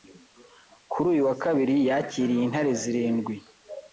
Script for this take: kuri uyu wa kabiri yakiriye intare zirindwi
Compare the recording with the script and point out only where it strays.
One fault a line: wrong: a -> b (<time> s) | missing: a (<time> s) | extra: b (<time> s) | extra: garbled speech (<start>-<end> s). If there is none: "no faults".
no faults